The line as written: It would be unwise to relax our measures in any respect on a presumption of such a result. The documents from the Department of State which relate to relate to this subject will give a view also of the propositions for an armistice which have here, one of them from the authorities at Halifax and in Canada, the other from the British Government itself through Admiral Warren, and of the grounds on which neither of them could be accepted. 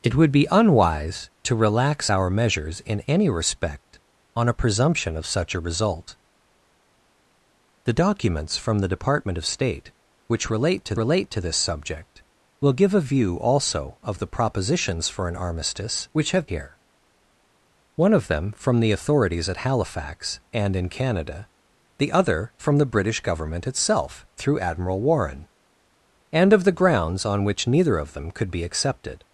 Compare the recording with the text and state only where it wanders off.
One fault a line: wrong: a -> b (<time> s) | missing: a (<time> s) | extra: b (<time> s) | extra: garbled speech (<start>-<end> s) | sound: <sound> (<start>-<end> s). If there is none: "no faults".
no faults